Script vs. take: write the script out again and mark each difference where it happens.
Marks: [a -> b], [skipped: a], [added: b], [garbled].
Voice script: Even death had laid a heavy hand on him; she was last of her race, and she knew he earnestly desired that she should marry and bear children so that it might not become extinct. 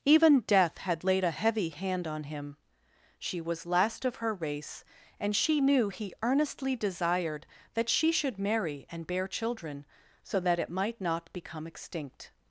Even death had laid a heavy hand on him; she was last of her race, and she knew he earnestly desired that she should marry and bear children so that it might not become extinct.